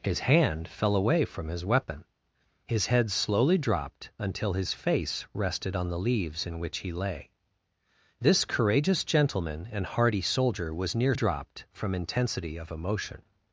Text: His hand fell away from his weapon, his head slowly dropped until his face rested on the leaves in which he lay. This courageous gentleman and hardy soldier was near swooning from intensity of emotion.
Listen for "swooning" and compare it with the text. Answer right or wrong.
wrong